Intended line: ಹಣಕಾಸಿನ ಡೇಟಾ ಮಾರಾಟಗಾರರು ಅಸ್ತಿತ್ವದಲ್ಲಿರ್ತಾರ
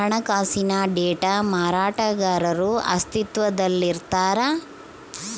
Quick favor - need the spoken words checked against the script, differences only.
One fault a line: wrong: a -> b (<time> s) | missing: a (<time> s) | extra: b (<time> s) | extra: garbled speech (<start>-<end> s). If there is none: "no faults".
no faults